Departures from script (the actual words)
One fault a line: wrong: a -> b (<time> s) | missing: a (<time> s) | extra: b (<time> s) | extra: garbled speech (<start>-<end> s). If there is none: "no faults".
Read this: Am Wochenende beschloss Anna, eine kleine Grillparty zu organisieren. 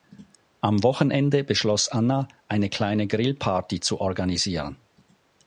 no faults